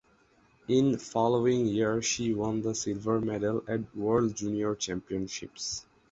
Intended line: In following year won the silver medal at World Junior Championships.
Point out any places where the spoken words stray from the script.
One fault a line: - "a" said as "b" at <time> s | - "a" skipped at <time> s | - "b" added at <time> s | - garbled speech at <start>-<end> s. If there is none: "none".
- "she" added at 2.0 s